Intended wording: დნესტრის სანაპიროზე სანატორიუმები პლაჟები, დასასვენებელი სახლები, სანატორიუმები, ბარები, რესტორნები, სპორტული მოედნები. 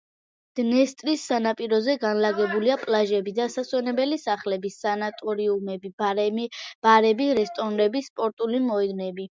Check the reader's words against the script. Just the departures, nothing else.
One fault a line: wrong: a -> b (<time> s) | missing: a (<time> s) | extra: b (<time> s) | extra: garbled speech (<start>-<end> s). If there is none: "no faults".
wrong: სანატორიუმები -> განლაგებულია (2.0 s)